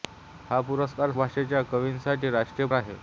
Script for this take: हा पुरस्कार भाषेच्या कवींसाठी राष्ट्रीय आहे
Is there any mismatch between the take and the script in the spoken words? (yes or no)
no